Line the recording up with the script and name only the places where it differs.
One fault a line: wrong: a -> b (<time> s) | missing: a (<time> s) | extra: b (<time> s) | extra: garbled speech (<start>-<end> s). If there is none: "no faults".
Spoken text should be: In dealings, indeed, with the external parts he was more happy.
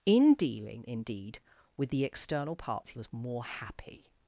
wrong: dealings -> dealing (0.3 s)